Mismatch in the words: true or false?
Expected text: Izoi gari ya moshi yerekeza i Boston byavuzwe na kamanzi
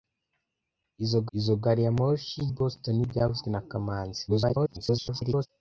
true